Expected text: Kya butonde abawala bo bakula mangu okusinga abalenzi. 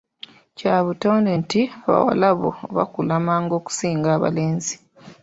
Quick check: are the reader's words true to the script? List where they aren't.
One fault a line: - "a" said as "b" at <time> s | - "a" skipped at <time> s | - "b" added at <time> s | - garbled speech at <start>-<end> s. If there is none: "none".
- "nti" added at 1.4 s